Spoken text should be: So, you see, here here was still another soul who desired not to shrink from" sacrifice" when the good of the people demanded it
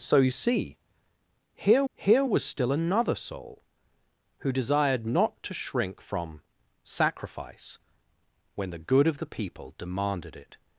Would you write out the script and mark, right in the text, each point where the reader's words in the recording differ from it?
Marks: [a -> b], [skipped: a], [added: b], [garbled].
So, you see, here here was still another soul who desired not to shrink from" sacrifice" when the good of the people demanded it